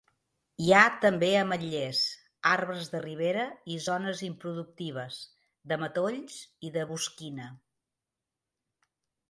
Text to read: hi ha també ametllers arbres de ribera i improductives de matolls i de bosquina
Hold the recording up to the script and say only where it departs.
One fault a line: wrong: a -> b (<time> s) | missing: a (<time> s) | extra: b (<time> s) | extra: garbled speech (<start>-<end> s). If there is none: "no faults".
extra: zones (3.9 s)